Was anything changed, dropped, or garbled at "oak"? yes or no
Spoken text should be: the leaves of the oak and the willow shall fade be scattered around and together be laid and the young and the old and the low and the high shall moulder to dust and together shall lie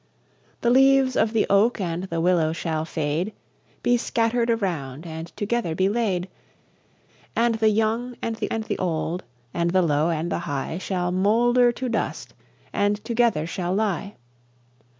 no